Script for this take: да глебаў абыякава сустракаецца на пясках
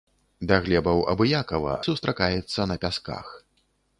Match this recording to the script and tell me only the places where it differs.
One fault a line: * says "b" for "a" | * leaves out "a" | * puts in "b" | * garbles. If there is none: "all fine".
all fine